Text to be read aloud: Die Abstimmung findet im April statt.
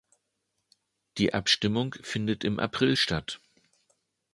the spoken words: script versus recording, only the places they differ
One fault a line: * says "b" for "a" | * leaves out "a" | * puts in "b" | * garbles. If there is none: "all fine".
all fine